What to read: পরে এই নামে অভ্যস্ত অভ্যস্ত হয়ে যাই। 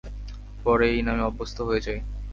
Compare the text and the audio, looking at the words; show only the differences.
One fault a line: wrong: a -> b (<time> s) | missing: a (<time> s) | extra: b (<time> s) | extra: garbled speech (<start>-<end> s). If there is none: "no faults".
missing: অভ্যস্ত (1.6 s)